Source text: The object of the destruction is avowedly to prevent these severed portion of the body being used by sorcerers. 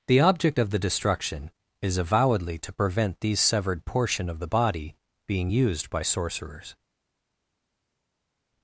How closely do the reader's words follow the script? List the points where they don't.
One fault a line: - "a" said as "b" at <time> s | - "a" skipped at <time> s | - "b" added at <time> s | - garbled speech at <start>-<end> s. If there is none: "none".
none